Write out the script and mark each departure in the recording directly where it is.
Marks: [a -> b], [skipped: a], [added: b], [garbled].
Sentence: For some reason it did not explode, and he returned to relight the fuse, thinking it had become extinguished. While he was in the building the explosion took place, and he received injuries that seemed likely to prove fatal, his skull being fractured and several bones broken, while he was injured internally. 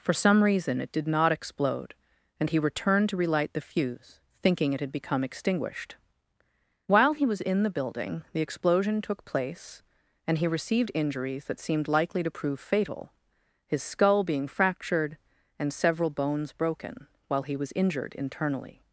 For some reason it did not explode, and he returned to relight the fuse, thinking it had become extinguished. While he was in the building the explosion took place, and he received injuries that seemed likely to prove fatal, his skull being fractured and several bones broken, while he was injured internally.